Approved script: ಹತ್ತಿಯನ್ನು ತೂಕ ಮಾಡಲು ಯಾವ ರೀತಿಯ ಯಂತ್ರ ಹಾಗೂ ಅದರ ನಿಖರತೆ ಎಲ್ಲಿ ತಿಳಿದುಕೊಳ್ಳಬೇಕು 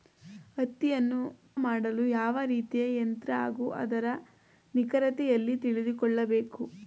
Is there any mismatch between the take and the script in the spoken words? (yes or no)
yes